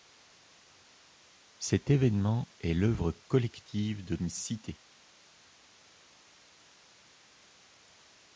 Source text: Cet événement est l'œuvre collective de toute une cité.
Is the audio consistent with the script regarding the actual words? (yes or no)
no